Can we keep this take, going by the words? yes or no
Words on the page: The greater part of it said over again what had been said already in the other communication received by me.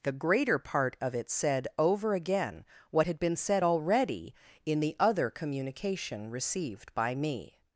yes